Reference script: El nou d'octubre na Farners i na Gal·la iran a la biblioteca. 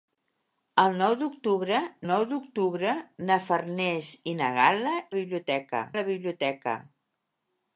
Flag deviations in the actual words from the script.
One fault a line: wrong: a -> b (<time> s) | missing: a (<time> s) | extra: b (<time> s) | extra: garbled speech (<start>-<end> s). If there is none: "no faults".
extra: nou d'octubre (2.1 s)
wrong: iran -> biblioteca (5.1 s)